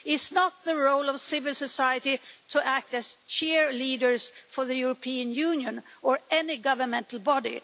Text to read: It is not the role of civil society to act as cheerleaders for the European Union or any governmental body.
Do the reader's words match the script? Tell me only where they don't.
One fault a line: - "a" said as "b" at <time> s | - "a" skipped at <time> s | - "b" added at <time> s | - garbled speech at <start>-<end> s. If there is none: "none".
none